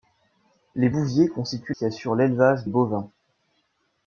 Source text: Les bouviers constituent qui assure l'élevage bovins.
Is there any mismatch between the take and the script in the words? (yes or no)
no